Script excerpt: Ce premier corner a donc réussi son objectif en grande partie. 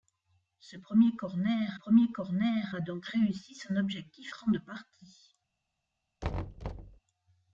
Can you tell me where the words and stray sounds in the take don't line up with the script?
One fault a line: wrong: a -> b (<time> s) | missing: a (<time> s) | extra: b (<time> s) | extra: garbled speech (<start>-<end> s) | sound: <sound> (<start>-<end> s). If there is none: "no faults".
extra: premier corner (1.7 s)
missing: en (4.3 s)
sound: thud (6.2-7.0 s)